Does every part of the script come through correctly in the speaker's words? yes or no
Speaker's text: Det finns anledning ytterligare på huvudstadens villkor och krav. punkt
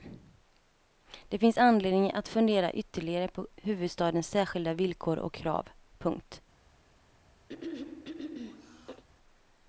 no